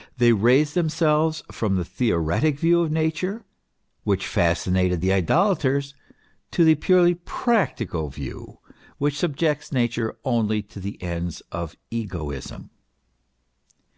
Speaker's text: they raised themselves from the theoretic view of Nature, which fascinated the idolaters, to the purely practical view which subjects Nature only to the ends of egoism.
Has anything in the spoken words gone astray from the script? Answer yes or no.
no